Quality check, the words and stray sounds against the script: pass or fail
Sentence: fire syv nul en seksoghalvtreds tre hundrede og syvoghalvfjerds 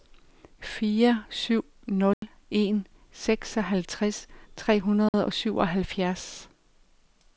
fail